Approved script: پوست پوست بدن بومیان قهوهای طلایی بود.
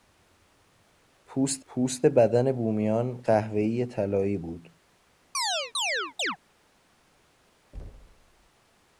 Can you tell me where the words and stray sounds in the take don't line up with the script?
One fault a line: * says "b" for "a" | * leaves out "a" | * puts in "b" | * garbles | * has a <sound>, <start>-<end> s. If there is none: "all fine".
* has a chirp, 5.3-6.4 s
* has a thud, 7.7-8.5 s